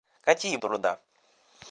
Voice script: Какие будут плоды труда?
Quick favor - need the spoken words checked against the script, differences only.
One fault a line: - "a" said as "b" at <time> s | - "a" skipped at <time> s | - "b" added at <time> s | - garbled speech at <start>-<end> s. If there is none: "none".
- "будут плоды" skipped at 0.6 s